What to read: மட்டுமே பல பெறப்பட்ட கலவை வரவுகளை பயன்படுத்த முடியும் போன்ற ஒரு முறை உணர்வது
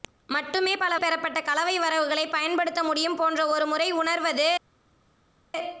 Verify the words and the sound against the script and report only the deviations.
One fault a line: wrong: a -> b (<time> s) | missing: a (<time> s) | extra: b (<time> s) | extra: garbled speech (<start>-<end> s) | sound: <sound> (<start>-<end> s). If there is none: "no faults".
no faults